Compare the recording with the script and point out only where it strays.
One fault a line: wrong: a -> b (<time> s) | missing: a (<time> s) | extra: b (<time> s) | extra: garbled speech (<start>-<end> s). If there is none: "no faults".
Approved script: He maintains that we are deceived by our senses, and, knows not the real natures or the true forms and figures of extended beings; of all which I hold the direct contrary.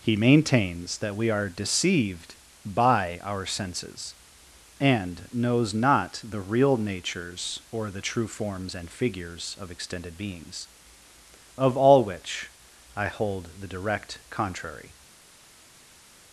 no faults